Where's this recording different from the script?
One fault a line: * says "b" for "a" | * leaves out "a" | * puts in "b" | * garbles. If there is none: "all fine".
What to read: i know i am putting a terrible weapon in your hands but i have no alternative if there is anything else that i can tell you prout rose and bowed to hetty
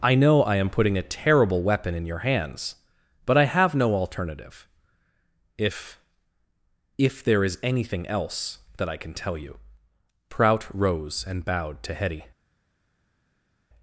* puts in "if"